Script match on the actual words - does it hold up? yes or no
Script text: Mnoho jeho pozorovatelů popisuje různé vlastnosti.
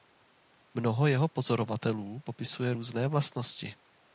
yes